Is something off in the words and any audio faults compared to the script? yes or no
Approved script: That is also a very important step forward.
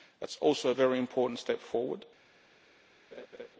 yes